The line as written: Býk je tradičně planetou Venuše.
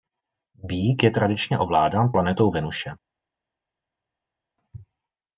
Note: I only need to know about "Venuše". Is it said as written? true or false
true